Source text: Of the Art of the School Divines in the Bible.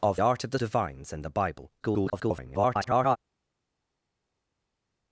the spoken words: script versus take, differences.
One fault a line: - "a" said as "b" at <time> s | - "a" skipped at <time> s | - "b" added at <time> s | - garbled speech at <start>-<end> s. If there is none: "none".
- "the" skipped at 0.2 s
- "School" skipped at 0.6 s
- garbled speech at 1.8-3.2 s